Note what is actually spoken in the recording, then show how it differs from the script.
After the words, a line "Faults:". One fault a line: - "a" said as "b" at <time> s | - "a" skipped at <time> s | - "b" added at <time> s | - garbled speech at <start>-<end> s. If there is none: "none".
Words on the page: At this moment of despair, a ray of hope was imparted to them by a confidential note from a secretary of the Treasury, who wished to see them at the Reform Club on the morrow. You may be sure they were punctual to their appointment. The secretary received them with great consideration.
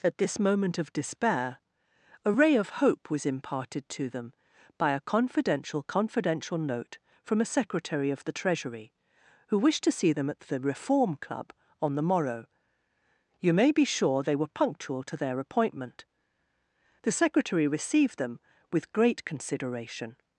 At this moment of despair, a ray of hope was imparted to them by a confidential confidential note from a secretary of the Treasury, who wished to see them at the Reform Club on the morrow. You may be sure they were punctual to their appointment. The secretary received them with great consideration.
Faults:
- "confidential" added at 5.8 s